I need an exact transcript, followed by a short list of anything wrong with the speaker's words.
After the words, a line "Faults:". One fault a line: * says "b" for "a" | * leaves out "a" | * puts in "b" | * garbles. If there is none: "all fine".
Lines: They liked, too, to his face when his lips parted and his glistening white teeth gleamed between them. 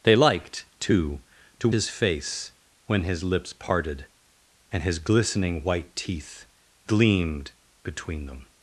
They liked, too, to his face when his lips parted and his glistening white teeth gleamed between them.
Faults:
all fine